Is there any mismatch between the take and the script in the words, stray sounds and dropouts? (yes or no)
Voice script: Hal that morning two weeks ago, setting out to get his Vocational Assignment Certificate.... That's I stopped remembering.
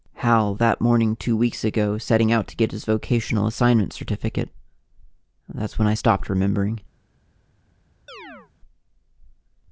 yes